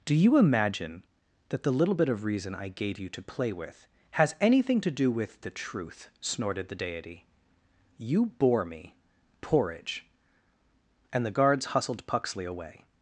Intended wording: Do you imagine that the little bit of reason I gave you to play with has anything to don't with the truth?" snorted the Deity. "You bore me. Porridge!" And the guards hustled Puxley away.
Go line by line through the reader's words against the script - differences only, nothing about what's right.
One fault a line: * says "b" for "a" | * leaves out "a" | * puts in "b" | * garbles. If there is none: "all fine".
* says "do" for "don't"